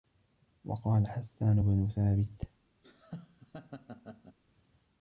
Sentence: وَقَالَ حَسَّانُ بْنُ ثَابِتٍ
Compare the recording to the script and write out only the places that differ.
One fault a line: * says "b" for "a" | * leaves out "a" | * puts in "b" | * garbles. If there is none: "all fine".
all fine